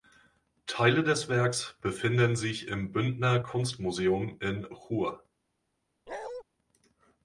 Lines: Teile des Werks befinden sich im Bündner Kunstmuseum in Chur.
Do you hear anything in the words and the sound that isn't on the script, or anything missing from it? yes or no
yes